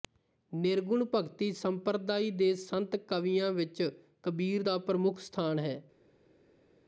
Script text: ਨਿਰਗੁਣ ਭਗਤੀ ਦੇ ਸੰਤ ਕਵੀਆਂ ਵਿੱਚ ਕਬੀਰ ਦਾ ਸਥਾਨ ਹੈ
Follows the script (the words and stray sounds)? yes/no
no